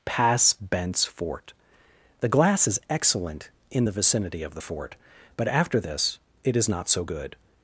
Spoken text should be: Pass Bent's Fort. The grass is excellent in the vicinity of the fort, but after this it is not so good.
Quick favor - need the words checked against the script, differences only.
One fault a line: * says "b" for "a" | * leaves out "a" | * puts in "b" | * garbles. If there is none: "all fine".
* says "glass" for "grass"